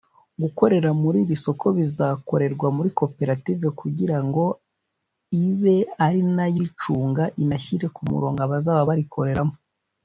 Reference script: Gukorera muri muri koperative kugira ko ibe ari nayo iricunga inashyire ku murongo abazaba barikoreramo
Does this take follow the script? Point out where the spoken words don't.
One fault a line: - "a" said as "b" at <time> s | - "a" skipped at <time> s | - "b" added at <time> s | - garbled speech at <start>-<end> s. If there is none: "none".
- "iri soko bizakorerwa" added at 1.2 s
- "ko" said as "ngo" at 4.3 s